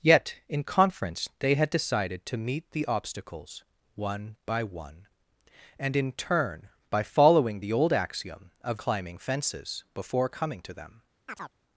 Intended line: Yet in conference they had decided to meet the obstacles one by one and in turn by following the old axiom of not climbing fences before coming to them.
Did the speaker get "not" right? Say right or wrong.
wrong